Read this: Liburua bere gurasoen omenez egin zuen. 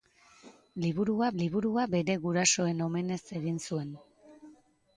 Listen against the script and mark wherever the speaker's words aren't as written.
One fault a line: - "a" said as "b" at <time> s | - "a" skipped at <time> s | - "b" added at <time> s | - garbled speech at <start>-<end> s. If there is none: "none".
- "liburua" added at 1.4 s